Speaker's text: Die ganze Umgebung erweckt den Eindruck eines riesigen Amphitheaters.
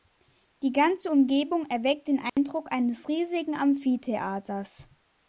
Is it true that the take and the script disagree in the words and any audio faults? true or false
true